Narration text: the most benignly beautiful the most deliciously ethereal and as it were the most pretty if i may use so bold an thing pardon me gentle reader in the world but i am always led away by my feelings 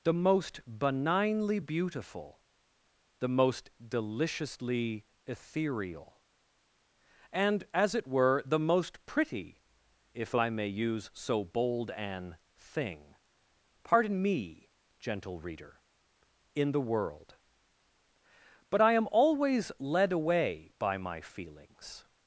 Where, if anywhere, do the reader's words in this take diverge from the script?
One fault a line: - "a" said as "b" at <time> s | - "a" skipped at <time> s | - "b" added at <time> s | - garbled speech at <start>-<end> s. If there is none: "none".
none